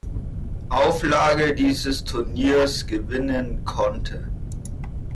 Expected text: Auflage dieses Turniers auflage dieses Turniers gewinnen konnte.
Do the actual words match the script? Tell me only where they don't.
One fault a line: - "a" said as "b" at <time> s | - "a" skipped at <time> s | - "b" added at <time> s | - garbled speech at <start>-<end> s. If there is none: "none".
- "auflage dieses Turniers" skipped at 2.9 s